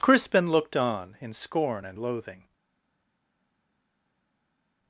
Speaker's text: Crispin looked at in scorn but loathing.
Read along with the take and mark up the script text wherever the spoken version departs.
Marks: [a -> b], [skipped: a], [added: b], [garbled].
Crispin looked [at -> on] in scorn [but -> and] loathing.